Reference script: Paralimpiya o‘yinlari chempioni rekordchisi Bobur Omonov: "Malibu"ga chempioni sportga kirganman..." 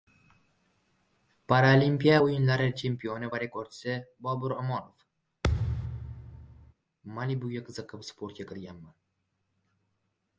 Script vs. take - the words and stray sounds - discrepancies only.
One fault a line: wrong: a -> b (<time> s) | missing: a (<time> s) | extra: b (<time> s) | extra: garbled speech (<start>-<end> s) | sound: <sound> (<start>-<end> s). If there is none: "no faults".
extra: va (3.3 s)
sound: thud (5.4-6.7 s)
wrong: chempioni -> qiziqib (7.7 s)